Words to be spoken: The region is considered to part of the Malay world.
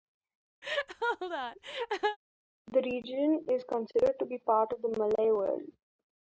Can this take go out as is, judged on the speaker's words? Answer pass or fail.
fail